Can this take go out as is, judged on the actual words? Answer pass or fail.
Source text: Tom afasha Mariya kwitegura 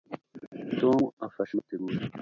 fail